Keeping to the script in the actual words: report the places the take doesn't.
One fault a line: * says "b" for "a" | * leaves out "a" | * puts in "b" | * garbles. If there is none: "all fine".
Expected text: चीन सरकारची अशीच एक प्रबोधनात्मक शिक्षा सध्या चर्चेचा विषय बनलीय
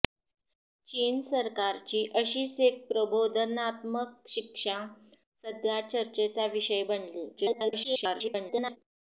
* garbles